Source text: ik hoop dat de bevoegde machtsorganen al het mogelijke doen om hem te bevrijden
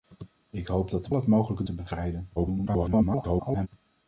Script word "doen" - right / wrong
wrong